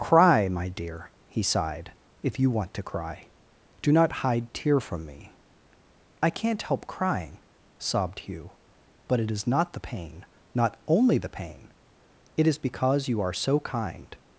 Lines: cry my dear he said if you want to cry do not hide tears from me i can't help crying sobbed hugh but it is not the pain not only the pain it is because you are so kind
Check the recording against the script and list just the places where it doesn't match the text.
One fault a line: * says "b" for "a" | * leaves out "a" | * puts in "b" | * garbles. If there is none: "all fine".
* says "sighed" for "said"
* says "tear" for "tears"